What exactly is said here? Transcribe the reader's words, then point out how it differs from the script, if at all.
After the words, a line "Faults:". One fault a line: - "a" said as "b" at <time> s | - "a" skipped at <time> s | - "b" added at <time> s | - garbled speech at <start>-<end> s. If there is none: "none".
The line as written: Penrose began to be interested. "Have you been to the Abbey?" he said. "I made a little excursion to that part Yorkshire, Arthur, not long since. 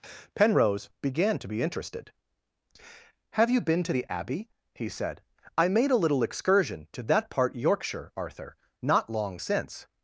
Penrose began to be interested. "Have you been to the Abbey?" he said. "I made a little excursion to that part Yorkshire, Arthur, not long since.
Faults:
none